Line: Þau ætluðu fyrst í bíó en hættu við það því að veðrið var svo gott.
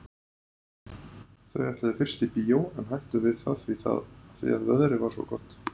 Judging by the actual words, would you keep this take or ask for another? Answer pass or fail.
pass